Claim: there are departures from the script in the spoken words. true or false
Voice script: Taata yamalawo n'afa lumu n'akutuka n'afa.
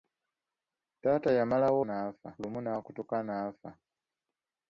false